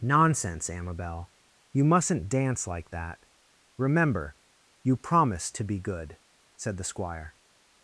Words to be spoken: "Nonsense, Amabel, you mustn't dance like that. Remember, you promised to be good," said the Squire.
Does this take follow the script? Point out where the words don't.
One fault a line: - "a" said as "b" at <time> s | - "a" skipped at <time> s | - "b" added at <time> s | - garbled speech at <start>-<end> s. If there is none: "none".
none